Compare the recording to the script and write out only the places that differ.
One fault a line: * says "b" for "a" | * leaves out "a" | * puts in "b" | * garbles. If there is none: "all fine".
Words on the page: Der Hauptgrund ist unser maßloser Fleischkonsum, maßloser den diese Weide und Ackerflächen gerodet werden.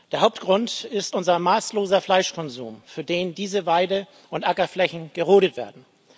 * says "für" for "maßloser"